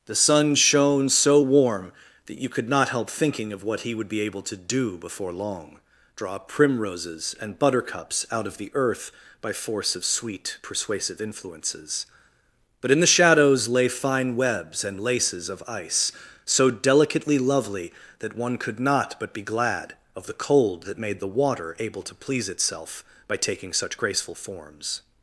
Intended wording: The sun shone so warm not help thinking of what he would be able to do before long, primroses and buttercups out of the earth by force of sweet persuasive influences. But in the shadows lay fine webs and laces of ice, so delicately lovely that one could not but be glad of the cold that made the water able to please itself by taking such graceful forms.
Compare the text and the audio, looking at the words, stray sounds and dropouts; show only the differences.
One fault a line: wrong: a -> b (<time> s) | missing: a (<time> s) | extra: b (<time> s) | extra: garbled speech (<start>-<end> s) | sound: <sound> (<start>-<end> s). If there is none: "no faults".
extra: that you could (2.3 s)
extra: draw (6.2 s)